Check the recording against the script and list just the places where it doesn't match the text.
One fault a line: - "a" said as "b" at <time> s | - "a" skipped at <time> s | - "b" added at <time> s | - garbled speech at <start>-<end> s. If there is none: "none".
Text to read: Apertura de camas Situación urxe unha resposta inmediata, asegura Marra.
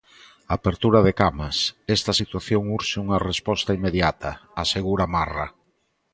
- "Esta" added at 2.0 s